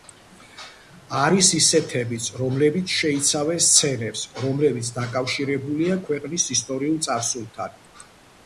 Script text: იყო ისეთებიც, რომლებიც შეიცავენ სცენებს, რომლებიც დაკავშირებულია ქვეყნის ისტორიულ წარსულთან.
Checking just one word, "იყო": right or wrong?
wrong